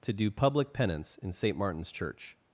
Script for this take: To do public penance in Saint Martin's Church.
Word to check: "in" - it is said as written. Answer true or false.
true